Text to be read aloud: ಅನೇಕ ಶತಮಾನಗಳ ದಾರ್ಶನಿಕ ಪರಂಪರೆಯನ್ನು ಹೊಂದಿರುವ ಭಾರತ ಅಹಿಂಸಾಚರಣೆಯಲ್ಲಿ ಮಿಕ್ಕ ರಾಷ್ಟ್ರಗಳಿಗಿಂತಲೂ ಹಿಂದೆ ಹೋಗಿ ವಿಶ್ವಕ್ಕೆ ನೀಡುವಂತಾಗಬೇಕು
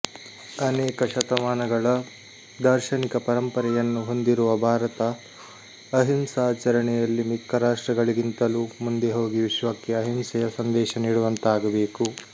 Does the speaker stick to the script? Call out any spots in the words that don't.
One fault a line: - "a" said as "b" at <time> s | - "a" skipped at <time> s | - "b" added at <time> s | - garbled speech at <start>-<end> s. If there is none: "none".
- "ಹಿಂದೆ" said as "ಮುಂದೆ" at 8.8 s
- "ಅಹಿಂಸೆಯ ಸಂದೇಶ" added at 10.0 s